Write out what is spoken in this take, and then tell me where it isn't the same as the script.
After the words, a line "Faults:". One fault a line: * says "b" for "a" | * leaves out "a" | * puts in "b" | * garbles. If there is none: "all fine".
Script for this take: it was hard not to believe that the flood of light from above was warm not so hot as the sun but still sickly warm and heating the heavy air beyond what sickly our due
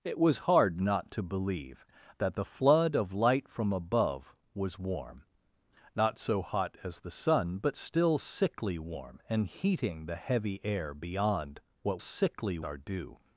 it was hard not to believe that the flood of light from above was warm not so hot as the sun but still sickly warm and heating the heavy air beyond what sickly our due
Faults:
all fine